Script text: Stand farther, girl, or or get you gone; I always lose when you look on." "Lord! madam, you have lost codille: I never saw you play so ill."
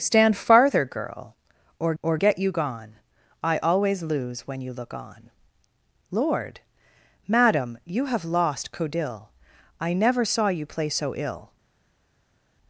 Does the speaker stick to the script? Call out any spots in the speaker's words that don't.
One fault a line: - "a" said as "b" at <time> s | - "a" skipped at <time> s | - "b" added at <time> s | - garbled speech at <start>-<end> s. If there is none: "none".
none